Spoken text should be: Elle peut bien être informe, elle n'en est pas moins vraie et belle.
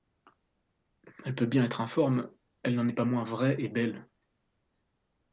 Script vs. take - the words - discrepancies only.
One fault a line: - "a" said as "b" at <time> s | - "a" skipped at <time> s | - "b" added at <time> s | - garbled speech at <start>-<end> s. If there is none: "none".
none